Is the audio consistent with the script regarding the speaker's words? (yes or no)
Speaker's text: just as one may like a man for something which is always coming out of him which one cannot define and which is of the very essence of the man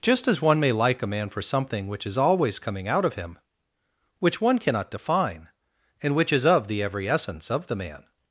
no